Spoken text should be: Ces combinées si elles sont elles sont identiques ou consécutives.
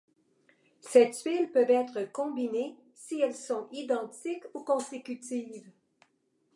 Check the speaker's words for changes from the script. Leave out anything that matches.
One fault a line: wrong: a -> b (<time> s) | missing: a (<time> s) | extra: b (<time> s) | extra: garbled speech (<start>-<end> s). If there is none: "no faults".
extra: tuiles peuvent être (1.1 s)
missing: elles sont (3.7 s)